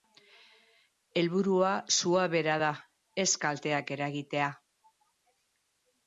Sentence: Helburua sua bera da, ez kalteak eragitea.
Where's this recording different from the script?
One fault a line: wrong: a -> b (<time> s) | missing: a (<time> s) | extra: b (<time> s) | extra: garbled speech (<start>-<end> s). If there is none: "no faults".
no faults